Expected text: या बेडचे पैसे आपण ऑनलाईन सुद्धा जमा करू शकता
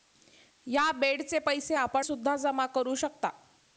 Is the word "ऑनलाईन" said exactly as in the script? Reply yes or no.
no